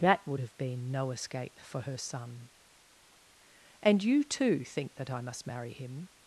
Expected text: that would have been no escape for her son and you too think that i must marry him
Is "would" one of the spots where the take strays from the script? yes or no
no